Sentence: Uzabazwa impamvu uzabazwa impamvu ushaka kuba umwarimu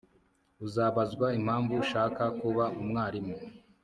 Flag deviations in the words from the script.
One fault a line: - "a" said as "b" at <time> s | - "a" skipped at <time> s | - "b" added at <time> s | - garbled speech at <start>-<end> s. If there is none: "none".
- "uzabazwa impamvu" skipped at 1.7 s